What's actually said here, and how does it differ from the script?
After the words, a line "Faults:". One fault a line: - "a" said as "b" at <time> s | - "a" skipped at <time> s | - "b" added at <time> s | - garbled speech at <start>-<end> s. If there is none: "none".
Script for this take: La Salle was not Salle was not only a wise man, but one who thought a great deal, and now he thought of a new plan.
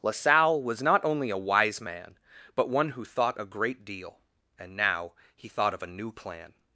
La Salle was not only a wise man, but one who thought a great deal, and now he thought of a new plan.
Faults:
- "Salle was not" skipped at 1.0 s